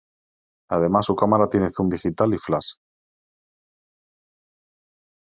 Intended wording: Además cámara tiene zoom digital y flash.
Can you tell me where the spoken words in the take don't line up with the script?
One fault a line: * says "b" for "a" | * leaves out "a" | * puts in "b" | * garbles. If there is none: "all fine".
* puts in "su"